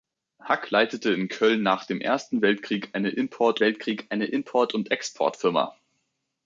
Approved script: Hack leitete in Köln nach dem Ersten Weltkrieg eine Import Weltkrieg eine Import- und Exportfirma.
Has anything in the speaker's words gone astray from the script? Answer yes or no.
no